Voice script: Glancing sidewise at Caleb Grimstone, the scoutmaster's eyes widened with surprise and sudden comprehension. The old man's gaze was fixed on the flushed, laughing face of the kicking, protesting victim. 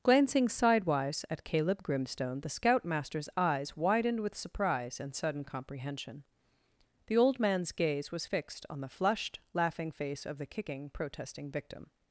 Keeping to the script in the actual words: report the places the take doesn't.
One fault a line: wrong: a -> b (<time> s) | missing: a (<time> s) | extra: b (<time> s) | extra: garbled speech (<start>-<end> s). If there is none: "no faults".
no faults